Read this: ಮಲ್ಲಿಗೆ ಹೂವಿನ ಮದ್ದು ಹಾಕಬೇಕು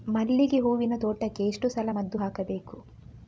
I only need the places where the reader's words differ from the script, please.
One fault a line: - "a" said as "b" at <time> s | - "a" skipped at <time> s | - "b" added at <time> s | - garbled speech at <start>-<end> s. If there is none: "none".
- "ತೋಟಕ್ಕೆ ಎಷ್ಟು ಸಲ" added at 1.0 s